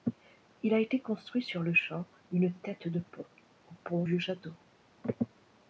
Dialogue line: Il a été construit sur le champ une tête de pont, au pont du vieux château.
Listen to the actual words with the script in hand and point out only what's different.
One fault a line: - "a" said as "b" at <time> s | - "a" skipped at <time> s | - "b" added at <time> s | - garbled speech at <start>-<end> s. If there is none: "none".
- "du" skipped at 4.0 s